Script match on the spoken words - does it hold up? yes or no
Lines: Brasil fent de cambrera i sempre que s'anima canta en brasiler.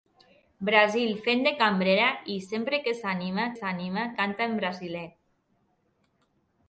no